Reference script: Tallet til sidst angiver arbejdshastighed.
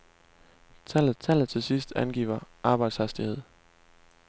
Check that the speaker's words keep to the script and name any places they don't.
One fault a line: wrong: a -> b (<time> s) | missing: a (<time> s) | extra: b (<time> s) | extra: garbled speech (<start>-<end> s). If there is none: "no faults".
extra: tallet (1.2 s)